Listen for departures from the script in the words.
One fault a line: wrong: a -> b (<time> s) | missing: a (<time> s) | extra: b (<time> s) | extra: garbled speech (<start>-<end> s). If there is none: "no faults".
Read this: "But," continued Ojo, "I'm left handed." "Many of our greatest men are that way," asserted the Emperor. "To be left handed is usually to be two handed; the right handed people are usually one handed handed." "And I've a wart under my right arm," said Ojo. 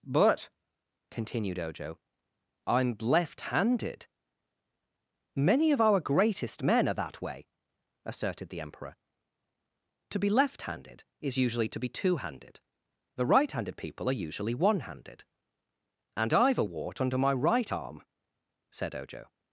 missing: handed (15.2 s)